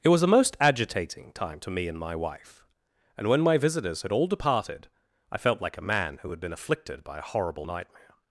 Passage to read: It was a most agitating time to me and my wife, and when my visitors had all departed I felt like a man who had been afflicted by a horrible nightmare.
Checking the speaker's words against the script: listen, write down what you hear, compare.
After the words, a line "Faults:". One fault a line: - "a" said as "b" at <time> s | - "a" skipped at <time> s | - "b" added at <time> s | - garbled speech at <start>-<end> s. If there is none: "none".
It was a most agitating time to me and my wife, and when my visitors had all departed I felt like a man who had been afflicted by a horrible nightmare.
Faults:
none